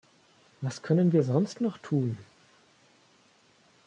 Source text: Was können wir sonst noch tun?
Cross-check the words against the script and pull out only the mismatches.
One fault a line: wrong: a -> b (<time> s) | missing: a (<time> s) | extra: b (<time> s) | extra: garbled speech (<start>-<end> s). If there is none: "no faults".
no faults